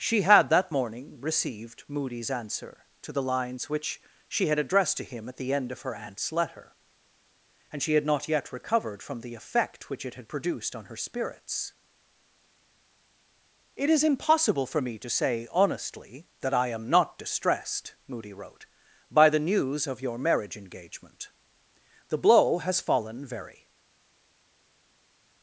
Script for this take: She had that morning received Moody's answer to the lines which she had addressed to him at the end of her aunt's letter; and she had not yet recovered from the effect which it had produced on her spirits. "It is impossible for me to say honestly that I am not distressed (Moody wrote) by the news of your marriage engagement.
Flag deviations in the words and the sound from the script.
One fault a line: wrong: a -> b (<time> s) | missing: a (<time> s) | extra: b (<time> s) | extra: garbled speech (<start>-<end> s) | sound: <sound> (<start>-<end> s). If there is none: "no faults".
extra: The blow has fallen very (22.1 s)